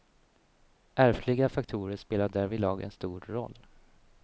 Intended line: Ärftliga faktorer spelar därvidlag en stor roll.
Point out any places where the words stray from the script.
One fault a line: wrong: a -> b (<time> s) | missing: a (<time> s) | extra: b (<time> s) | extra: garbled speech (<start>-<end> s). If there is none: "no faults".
no faults